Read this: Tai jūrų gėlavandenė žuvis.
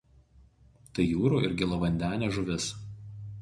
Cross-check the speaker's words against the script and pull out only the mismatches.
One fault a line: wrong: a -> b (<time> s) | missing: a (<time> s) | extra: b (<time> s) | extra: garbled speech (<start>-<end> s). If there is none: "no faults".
extra: ir (1.5 s)